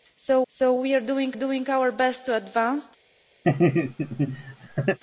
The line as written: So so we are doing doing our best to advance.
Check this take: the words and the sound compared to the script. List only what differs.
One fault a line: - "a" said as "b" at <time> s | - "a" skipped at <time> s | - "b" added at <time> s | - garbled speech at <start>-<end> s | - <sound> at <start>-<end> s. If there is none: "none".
- laugh at 3.4-5.0 s